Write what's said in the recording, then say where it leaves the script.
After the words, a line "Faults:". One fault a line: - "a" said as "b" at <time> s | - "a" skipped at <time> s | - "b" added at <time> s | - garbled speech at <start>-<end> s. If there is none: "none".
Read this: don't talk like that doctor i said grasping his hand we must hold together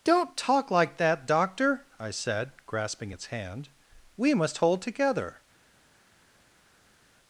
don't talk like that doctor i said grasping its hand we must hold together
Faults:
- "his" said as "its" at 3.1 s